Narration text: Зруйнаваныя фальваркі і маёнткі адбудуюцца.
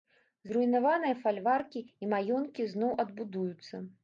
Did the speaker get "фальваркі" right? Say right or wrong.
right